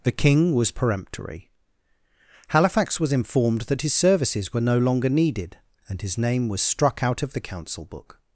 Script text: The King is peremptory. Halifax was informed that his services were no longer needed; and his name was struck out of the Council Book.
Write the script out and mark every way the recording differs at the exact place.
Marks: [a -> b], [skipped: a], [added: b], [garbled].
The King [is -> was] peremptory. Halifax was informed that his services were no longer needed; and his name was struck out of the Council Book.